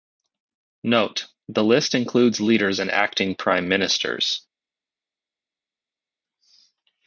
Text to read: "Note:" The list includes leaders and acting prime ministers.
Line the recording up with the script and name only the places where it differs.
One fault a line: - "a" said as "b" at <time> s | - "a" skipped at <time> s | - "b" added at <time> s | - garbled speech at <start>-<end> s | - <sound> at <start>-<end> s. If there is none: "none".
none